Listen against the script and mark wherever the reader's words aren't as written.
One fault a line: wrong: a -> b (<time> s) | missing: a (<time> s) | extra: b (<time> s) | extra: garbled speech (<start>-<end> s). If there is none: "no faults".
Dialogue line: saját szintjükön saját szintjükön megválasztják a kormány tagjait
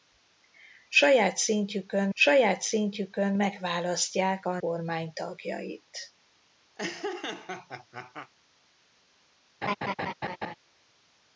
no faults